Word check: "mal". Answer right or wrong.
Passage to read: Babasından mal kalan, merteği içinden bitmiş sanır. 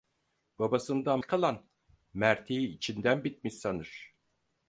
wrong